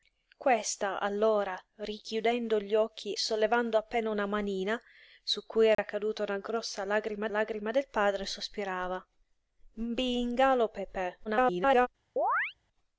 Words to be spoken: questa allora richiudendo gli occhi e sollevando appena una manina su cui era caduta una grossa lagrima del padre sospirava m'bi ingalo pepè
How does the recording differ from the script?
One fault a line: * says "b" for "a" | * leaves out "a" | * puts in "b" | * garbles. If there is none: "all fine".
* leaves out "e"
* puts in "lagrima"
* garbles